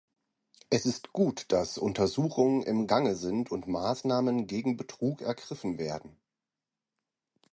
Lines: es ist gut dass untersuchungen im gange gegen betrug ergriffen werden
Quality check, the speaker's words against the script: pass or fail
fail